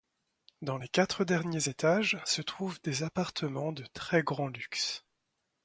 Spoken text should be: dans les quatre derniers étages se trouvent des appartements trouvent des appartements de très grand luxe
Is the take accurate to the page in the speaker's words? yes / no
no